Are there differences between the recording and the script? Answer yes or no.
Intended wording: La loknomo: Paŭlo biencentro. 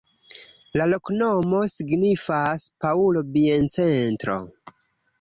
yes